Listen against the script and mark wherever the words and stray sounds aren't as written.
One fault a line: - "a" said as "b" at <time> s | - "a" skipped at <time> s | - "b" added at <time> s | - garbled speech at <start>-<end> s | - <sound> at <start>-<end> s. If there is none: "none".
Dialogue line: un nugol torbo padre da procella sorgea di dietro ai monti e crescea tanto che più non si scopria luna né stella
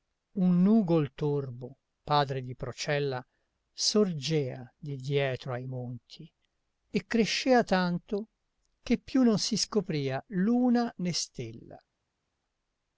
- "da" said as "di" at 2.4 s